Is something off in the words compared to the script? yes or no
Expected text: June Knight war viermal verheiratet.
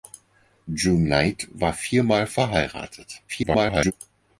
yes